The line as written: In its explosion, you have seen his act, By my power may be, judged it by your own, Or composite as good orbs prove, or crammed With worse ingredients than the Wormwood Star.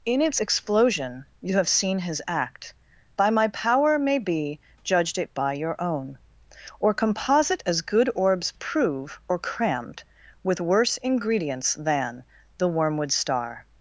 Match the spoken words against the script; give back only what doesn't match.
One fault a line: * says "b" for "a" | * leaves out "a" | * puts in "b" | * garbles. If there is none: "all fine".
all fine